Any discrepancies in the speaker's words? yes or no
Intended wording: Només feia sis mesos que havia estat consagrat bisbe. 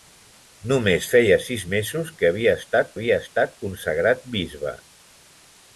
yes